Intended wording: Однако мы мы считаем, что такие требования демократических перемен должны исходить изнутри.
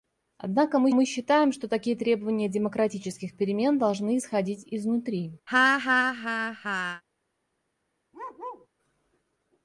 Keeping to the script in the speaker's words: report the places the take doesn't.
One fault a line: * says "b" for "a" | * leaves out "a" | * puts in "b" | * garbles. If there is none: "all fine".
all fine